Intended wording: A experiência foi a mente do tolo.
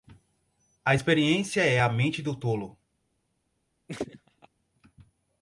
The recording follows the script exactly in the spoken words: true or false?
false